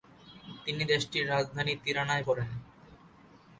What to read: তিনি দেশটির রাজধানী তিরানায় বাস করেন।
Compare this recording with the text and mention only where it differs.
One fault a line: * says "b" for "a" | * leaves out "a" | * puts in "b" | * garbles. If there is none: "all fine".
* leaves out "বাস"